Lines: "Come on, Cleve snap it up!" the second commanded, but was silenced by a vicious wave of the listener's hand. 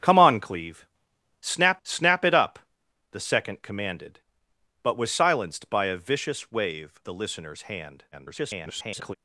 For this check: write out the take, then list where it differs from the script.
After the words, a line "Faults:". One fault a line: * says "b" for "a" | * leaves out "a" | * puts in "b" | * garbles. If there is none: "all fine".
"Come on, Cleve snap snap it up!" the second commanded, but was silenced by a vicious wave the listener's hand. [garbled]
Faults:
* puts in "snap"
* leaves out "of"
* garbles